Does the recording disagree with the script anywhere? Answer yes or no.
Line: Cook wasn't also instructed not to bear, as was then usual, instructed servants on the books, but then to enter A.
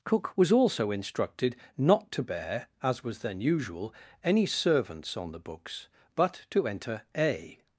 yes